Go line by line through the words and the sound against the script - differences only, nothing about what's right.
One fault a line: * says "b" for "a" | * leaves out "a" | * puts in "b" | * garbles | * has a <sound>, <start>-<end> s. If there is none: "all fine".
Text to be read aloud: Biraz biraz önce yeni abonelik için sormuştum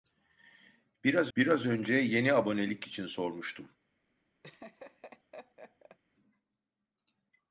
* has a laugh, 4.4-6.0 s